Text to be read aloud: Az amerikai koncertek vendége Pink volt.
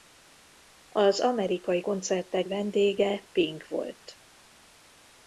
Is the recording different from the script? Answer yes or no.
no